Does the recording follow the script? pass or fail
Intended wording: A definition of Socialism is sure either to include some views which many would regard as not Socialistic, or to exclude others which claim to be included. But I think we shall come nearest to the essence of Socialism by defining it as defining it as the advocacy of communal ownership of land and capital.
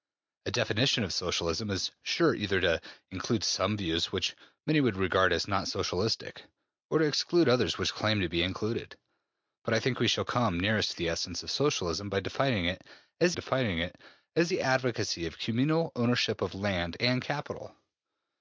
pass